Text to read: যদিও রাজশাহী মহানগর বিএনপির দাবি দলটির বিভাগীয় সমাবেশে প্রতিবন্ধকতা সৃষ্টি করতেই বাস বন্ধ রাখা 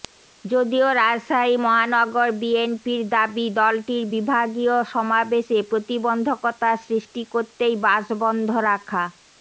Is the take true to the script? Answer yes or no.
yes